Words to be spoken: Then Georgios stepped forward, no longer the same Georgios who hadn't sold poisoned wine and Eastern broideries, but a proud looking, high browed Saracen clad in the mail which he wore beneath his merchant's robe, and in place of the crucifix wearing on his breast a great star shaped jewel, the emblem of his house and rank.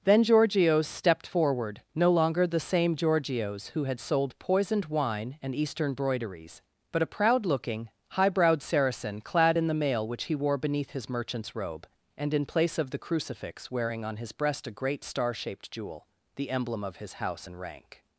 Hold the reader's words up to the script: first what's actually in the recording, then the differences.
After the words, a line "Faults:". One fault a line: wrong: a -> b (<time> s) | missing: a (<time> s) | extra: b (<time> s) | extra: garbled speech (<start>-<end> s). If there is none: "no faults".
Then Georgios stepped forward, no longer the same Georgios who had sold poisoned wine and Eastern broideries, but a proud looking, high browed Saracen clad in the mail which he wore beneath his merchant's robe, and in place of the crucifix wearing on his breast a great star shaped jewel, the emblem of his house and rank.
Faults:
wrong: hadn't -> had (3.8 s)